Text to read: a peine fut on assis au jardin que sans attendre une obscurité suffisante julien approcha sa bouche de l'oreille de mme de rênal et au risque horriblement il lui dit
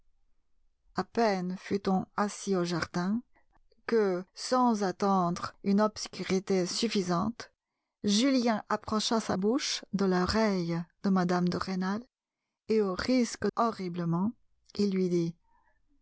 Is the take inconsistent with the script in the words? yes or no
no